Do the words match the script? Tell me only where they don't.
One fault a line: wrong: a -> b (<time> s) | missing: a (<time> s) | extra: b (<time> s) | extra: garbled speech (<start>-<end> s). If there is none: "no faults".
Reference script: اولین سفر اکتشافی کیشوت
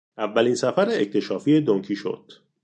extra: دن (1.6 s)